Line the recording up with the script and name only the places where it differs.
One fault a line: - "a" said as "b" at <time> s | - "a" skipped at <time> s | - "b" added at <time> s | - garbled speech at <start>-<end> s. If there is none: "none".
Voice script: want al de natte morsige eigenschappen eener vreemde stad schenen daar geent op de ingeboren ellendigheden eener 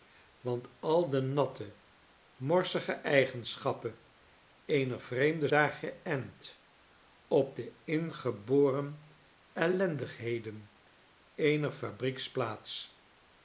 - "stad schenen" skipped at 5.5 s